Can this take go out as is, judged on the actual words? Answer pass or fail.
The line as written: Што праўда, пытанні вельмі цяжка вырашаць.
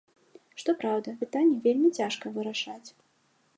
pass